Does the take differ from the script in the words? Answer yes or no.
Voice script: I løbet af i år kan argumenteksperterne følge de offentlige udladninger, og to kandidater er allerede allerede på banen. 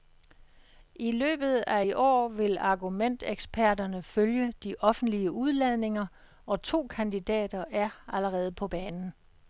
yes